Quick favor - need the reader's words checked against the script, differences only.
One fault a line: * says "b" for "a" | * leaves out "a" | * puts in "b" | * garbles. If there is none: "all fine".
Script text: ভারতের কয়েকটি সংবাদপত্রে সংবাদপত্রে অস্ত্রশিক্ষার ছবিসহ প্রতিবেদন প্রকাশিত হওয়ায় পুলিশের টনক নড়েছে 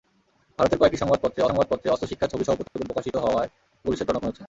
all fine